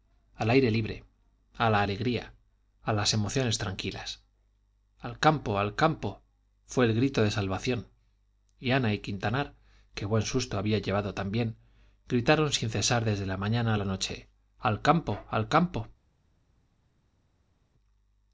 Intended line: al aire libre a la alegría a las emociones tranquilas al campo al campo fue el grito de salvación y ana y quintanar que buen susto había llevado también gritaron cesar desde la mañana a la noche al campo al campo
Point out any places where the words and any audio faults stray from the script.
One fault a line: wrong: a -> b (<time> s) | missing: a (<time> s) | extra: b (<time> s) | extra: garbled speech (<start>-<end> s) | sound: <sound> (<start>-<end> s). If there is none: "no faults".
extra: sin (12.5 s)